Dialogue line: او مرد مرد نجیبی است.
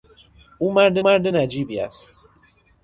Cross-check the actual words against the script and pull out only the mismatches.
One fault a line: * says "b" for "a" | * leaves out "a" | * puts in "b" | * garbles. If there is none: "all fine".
all fine